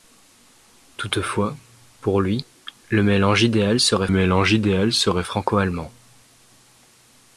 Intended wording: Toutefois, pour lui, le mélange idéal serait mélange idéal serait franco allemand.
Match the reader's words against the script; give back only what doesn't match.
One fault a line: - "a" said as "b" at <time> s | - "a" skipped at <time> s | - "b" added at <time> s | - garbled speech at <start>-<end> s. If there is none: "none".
none